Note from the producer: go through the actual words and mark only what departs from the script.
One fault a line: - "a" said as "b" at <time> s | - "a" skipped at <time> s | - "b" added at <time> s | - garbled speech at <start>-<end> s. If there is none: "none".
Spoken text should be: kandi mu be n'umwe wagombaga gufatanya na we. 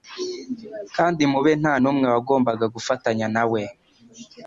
- "nta" added at 1.6 s